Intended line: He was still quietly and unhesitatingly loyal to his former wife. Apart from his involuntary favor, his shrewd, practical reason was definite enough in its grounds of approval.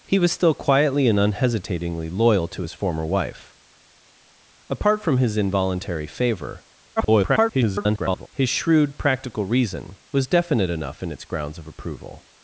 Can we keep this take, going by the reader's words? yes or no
no